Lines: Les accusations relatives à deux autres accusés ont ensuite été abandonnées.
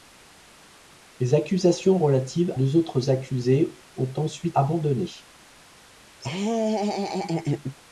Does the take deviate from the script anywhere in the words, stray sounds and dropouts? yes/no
yes